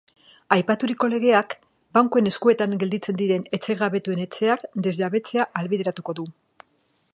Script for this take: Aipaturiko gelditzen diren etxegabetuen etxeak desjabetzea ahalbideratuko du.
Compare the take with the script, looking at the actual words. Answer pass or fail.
fail